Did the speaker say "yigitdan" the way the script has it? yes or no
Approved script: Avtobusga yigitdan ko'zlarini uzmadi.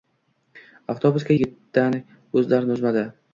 yes